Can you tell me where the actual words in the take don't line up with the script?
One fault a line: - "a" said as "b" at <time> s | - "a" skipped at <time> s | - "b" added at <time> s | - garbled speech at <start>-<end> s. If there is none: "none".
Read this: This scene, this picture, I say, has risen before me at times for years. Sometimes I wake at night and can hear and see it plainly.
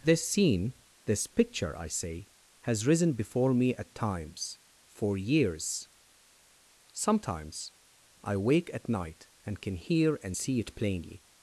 none